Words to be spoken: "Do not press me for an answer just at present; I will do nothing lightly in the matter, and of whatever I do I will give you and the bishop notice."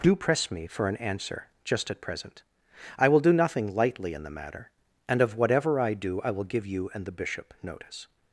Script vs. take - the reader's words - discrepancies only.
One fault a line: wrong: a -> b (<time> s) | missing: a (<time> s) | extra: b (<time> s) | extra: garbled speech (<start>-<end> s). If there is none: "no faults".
missing: not (0.1 s)